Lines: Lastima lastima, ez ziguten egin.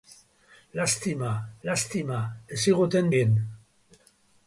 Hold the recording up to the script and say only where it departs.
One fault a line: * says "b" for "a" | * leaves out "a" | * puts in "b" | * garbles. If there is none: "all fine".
all fine